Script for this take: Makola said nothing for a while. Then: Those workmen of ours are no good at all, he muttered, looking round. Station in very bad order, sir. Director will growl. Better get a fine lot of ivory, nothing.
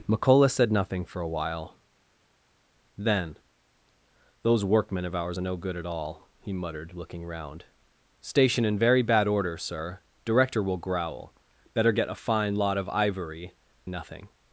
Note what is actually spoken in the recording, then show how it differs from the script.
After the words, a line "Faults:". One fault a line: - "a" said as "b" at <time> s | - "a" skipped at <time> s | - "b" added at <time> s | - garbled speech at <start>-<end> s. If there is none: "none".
Makola said nothing for a while. Then: Those workmen of ours are no good at all, he muttered, looking round. Station in very bad order, sir. Director will growl. Better get a fine lot of ivory, nothing.
Faults:
none